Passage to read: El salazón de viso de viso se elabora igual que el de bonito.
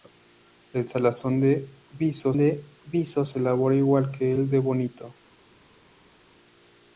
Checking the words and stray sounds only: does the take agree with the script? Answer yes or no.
yes